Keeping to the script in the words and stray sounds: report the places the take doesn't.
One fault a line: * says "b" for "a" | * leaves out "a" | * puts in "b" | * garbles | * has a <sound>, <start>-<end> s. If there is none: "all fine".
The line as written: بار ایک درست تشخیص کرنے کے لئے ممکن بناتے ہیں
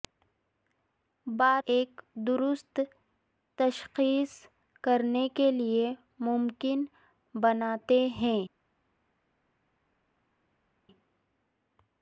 all fine